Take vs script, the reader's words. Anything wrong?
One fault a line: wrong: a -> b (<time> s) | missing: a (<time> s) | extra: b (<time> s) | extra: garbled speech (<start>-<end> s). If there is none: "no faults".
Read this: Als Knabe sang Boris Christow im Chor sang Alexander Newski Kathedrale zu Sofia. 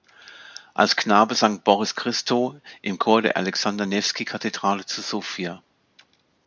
wrong: sang -> der (3.2 s)